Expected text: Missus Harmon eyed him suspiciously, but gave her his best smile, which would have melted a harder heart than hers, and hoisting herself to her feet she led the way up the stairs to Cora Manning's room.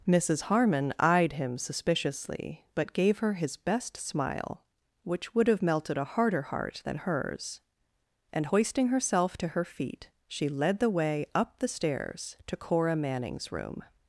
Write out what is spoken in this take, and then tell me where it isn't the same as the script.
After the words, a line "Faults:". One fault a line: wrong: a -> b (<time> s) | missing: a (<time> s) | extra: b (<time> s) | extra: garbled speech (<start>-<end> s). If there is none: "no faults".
Missus Harmon eyed him suspiciously, but gave her his best smile, which would have melted a harder heart than hers, and hoisting herself to her feet she led the way up the stairs to Cora Manning's room.
Faults:
no faults